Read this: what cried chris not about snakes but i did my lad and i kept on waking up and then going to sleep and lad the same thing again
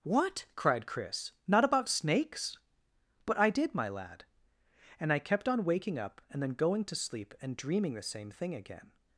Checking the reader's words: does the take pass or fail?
fail